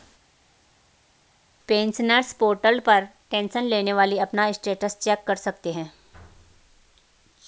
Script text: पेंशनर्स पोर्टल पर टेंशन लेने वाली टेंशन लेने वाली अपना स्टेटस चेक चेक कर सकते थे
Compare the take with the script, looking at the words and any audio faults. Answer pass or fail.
fail